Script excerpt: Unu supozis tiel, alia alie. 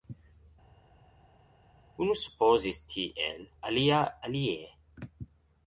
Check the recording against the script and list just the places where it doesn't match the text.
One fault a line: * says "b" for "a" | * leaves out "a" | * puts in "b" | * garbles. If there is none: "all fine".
all fine